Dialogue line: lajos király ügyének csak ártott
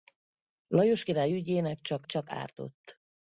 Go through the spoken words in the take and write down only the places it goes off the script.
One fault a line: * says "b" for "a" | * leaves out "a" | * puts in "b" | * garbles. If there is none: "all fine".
* puts in "csak"